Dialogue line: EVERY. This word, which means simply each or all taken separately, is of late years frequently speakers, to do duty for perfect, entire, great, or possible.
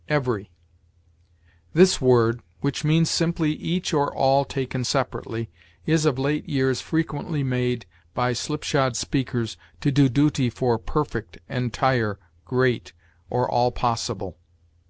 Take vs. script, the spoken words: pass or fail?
fail